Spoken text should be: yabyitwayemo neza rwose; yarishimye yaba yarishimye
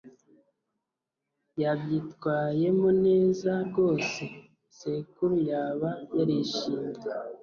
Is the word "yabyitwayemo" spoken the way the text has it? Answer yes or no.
yes